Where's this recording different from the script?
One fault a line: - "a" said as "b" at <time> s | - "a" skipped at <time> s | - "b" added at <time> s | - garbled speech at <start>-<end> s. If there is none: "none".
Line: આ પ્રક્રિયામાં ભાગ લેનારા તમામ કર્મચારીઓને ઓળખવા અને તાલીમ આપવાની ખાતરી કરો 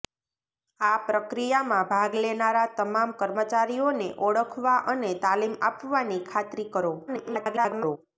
- garbled speech at 7.1-8.0 s